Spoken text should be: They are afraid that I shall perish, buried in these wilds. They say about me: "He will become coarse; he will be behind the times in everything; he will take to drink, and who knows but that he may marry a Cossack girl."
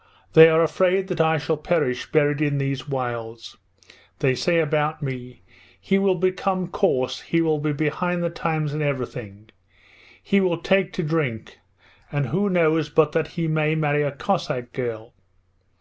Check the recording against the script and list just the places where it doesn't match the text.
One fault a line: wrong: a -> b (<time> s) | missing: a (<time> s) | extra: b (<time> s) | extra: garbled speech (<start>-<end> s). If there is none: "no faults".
no faults